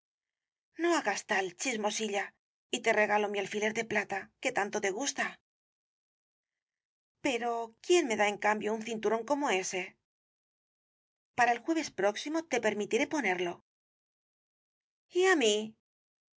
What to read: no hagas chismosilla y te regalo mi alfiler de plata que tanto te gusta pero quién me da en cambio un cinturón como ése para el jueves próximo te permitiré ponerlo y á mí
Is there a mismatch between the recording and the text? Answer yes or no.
yes